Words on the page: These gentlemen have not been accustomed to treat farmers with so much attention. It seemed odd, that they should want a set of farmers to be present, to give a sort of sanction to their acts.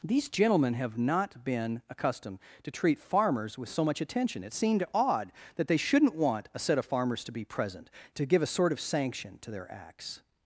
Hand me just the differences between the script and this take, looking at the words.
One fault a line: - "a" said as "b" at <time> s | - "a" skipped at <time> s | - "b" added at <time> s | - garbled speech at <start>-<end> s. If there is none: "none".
- "should" said as "shouldn't" at 5.8 s